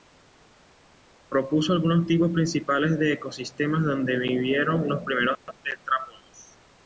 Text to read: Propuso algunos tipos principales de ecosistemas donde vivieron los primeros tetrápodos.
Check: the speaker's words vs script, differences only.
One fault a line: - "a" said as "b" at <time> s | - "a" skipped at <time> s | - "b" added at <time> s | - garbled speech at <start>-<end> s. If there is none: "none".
none